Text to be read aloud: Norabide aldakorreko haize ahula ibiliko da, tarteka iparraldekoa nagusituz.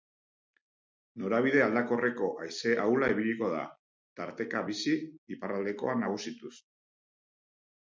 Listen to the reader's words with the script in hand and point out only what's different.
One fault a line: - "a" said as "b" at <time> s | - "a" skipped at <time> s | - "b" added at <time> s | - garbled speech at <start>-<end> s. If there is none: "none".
- "bizi" added at 4.7 s